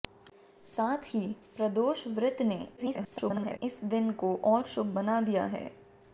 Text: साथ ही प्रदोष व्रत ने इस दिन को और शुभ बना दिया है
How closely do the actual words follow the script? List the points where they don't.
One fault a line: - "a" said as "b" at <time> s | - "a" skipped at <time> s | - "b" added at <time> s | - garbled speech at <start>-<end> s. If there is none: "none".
- garbled speech at 2.8-3.6 s